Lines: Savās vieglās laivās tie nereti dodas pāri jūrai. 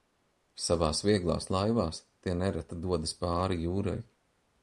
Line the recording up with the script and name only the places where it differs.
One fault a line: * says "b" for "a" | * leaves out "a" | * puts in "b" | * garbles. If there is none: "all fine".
all fine